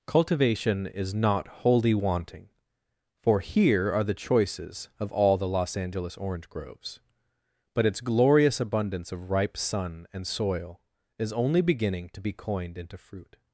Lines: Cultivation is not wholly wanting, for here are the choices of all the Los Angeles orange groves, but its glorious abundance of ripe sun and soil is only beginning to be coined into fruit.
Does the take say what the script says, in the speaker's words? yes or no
yes